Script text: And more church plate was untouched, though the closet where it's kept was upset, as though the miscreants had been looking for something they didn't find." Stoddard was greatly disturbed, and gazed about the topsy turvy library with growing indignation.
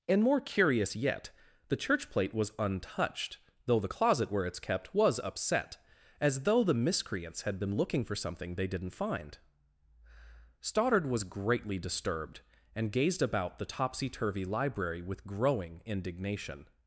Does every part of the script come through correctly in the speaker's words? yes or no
no